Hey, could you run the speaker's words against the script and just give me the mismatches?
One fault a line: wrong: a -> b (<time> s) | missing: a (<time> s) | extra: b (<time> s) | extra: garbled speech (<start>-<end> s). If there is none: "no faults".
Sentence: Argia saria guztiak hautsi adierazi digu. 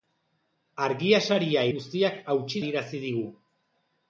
no faults